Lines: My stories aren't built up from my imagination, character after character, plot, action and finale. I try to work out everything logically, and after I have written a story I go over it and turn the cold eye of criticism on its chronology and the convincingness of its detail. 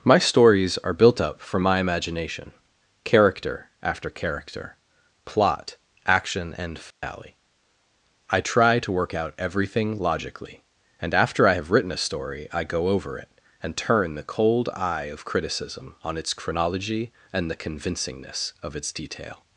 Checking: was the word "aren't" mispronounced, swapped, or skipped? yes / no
yes